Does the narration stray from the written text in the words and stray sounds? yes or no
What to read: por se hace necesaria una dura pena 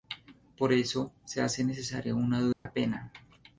yes